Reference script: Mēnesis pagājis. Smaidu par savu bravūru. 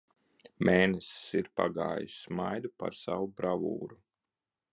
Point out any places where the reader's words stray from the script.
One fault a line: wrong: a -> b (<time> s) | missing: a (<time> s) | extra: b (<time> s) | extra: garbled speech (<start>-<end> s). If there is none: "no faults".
extra: ir (1.4 s)